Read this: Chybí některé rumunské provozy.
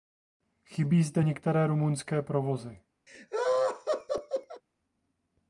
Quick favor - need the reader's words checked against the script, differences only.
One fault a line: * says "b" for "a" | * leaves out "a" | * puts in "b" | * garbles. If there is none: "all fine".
* puts in "zde"